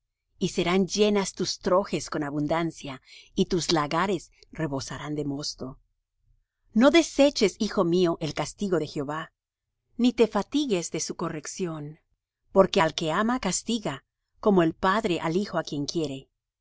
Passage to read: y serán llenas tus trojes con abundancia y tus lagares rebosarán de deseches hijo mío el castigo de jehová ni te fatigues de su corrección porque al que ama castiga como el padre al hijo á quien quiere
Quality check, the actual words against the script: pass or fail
fail